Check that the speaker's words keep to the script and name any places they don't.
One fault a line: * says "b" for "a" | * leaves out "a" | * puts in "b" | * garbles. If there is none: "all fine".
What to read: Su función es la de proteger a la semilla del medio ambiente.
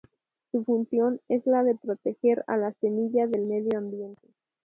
all fine